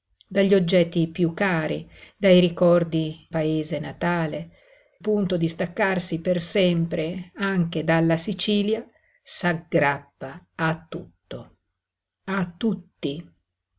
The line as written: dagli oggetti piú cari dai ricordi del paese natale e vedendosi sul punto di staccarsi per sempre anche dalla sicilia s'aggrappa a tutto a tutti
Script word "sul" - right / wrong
wrong